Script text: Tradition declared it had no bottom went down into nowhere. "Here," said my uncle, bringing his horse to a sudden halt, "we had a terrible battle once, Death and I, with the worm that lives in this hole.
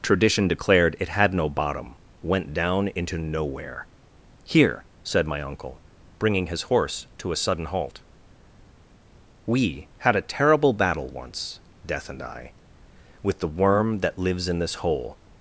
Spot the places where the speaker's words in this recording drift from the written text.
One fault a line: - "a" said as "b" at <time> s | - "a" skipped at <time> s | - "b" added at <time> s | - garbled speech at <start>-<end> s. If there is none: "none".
none